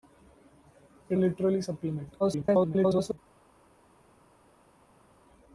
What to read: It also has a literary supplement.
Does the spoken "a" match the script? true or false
false